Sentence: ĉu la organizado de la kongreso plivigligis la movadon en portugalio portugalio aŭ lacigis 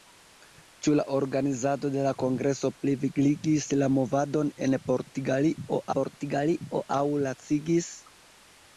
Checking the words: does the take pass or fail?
pass